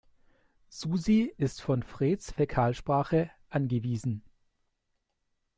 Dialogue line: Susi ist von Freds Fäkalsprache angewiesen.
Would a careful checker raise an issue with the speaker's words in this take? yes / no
no